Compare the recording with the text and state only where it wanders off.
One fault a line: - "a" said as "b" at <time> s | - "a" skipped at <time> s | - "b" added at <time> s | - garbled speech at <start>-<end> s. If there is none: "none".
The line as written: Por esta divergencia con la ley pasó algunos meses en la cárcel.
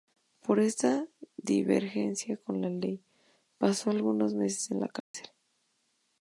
none